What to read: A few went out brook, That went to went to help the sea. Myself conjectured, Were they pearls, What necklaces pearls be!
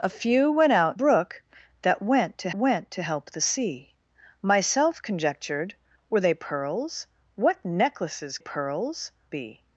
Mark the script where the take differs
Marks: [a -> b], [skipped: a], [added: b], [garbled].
A few went out brook, That went to went to help the sea. Myself conjectured, Were they pearls, What necklaces pearls be!